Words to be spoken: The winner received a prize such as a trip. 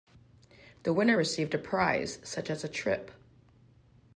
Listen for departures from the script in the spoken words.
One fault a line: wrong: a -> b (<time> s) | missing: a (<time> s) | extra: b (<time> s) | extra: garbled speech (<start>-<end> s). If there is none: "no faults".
no faults